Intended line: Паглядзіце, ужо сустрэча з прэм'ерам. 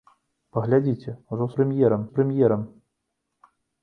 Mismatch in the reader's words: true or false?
true